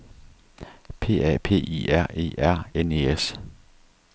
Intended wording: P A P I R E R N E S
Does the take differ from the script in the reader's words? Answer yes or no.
no